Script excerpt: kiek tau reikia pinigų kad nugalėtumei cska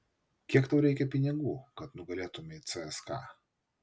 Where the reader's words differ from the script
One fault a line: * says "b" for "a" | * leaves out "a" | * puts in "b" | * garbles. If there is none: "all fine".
all fine